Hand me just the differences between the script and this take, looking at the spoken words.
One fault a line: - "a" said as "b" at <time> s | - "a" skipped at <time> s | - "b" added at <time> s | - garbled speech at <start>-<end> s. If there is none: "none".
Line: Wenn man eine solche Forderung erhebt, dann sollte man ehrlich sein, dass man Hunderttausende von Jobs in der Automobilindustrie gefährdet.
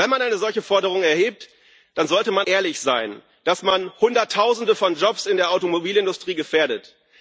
none